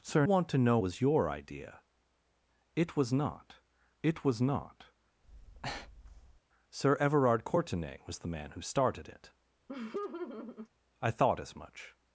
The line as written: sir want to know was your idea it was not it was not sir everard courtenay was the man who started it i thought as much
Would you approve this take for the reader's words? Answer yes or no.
yes